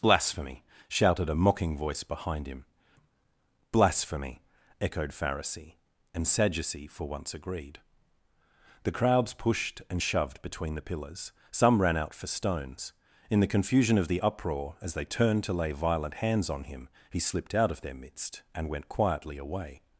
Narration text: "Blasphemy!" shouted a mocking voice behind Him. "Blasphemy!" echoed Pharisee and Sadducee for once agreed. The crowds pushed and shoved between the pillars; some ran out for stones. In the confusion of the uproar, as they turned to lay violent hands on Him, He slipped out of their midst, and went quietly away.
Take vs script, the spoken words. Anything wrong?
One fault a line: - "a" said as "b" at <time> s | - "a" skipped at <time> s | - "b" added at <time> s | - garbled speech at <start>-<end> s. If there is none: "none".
none